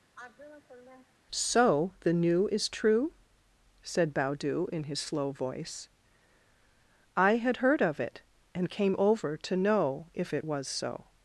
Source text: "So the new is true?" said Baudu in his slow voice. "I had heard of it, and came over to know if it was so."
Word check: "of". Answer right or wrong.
right